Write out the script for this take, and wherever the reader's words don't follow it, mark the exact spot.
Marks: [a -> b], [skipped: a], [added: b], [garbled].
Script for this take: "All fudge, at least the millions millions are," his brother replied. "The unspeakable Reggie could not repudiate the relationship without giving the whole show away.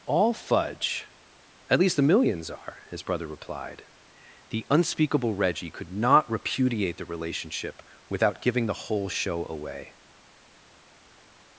"All fudge, at least the millions [skipped: millions] are," his brother replied. "The unspeakable Reggie could not repudiate the relationship without giving the whole show away.